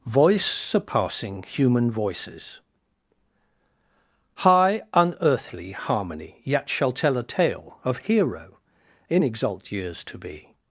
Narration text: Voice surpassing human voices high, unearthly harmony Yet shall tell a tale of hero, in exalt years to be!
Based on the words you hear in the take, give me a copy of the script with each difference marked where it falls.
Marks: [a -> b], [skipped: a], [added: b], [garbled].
Voice surpassing human voices high, unearthly harmony Yet shall tell a tale of hero, in exalt years to be!